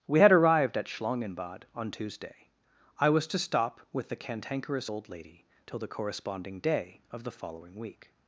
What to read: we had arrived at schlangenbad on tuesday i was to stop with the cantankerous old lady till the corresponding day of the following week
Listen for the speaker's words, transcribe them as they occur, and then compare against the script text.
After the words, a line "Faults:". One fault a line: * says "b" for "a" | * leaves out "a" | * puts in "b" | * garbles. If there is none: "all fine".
we had arrived at schlangenbad on tuesday i was to stop with the cantankerous old lady till the corresponding day of the following week
Faults:
all fine